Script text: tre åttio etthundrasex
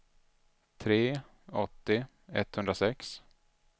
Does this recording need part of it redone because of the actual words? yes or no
no